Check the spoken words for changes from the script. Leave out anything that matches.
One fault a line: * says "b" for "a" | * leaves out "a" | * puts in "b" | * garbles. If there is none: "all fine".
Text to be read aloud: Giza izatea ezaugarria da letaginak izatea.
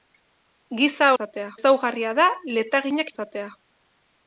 all fine